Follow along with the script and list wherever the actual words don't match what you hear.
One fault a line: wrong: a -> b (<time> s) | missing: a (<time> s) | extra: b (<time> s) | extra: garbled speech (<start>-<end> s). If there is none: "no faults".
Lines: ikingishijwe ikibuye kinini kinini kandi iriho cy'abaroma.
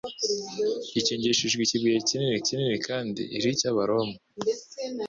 no faults